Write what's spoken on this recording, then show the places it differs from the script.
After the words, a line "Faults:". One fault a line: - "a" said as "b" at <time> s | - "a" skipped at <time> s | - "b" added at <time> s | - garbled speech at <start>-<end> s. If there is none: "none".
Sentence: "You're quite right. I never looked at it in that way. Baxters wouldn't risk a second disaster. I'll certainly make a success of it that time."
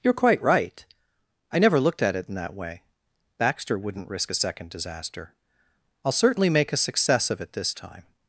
"You're quite right. I never looked at it in that way. Baxter wouldn't risk a second disaster. I'll certainly make a success of it this time."
Faults:
- "Baxters" said as "Baxter" at 3.4 s
- "that" said as "this" at 7.5 s